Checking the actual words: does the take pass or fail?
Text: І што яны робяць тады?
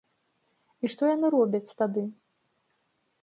pass